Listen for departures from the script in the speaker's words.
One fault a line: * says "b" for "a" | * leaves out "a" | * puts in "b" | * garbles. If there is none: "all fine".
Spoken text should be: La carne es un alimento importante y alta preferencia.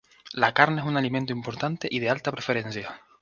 * puts in "de"